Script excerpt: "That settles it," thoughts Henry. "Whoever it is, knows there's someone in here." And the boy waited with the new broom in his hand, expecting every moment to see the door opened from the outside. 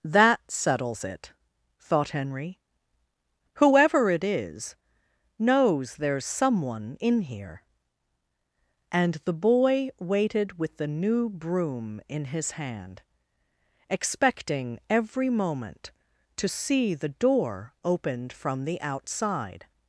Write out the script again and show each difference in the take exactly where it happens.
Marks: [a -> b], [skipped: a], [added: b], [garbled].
"That settles it," [thoughts -> thought] Henry. "Whoever it is, knows there's someone in here." And the boy waited with the new broom in his hand, expecting every moment to see the door opened from the outside.